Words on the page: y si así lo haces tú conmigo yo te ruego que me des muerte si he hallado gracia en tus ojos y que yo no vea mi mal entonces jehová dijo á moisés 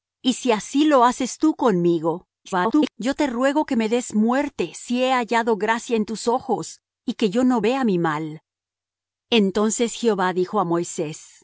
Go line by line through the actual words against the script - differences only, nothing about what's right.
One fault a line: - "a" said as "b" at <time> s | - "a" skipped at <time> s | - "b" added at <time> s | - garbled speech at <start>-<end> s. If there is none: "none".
- garbled speech at 2.4-2.9 s